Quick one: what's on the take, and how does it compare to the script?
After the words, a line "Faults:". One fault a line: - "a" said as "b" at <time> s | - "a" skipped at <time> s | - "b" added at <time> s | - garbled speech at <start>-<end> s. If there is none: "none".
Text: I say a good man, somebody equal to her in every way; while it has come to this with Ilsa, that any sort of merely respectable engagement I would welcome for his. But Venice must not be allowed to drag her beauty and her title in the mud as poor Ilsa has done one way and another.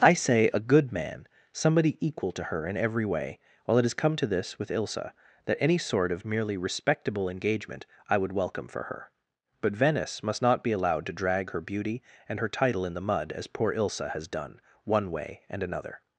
I say a good man, somebody equal to her in every way; while it has come to this with Ilsa, that any sort of merely respectable engagement I would welcome for her. But Venice must not be allowed to drag her beauty and her title in the mud as poor Ilsa has done one way and another.
Faults:
- "his" said as "her" at 8.8 s